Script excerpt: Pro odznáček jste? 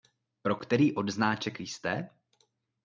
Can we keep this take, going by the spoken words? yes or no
no